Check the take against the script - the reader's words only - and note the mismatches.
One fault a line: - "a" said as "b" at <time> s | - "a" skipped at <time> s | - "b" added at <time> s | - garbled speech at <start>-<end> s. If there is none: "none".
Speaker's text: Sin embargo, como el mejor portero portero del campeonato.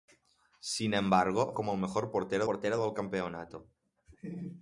none